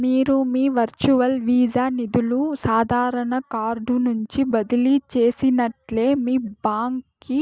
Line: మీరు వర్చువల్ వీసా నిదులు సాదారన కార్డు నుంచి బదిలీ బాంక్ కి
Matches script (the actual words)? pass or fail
fail